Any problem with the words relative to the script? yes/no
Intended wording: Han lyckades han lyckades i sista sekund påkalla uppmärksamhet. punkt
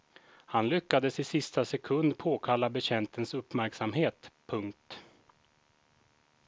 yes